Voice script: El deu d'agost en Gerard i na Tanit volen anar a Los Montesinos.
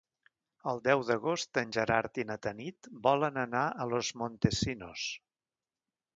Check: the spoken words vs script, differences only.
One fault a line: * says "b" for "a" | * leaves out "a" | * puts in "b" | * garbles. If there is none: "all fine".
all fine